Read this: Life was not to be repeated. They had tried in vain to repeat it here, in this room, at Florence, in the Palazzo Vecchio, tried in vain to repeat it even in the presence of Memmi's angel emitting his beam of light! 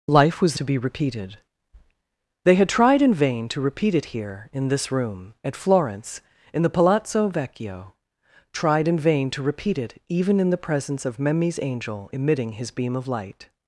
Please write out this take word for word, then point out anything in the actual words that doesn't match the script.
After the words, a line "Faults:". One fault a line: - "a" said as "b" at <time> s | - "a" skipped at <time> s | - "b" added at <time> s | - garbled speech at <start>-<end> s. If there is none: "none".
Life was to be repeated. They had tried in vain to repeat it here, in this room, at Florence, in the Palazzo Vecchio, tried in vain to repeat it even in the presence of Memmi's angel emitting his beam of light!
Faults:
- "not" skipped at 0.6 s